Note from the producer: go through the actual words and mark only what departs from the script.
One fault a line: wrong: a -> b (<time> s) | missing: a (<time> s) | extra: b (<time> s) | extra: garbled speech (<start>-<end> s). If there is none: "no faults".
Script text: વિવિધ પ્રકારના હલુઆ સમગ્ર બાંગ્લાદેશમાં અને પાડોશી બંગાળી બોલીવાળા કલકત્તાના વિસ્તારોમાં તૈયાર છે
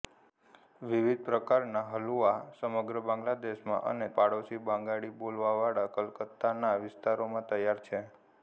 no faults